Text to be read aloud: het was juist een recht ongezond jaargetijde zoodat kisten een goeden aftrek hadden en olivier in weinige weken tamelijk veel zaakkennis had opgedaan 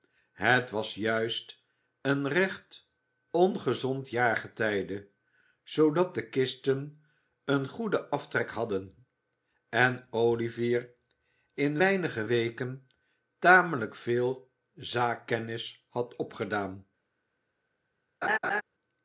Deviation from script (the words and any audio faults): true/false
true